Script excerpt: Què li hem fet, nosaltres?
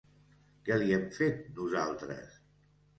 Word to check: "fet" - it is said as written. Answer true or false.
true